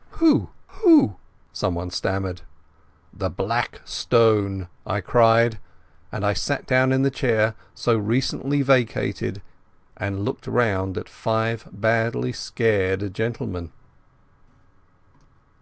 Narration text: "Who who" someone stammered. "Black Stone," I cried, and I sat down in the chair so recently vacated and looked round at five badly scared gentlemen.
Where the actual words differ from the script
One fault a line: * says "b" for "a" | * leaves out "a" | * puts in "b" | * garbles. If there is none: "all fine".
* puts in "The"